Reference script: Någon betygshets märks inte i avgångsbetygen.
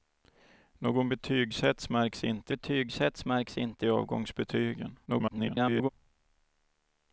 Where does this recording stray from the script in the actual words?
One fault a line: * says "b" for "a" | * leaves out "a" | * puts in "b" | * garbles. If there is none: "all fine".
* puts in "betygshets märks inte"
* garbles